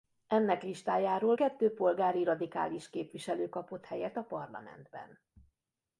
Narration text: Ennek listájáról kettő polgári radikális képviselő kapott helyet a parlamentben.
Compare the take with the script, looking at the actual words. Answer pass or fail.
pass